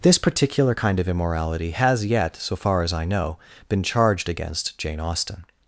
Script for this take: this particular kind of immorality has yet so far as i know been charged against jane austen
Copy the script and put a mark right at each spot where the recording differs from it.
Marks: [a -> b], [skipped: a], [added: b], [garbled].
this particular kind of immorality has yet so far as i know been charged against jane austen